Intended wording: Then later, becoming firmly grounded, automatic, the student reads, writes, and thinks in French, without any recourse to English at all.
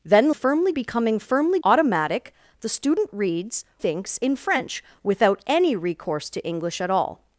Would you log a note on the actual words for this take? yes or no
yes